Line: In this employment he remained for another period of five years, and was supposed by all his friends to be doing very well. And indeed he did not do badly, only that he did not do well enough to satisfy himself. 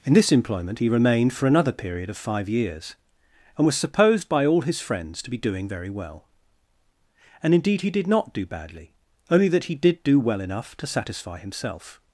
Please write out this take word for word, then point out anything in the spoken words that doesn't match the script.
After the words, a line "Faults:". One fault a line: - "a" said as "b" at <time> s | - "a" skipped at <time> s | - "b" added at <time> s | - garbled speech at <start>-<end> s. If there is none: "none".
In this employment he remained for another period of five years, and was supposed by all his friends to be doing very well. And indeed he did not do badly, only that he did do well enough to satisfy himself.
Faults:
- "not" skipped at 10.0 s